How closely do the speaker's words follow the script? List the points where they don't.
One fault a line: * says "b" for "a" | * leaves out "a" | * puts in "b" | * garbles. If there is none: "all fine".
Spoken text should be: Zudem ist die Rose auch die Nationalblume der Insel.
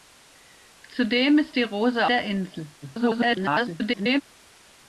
* leaves out "auch die Nationalblume"
* garbles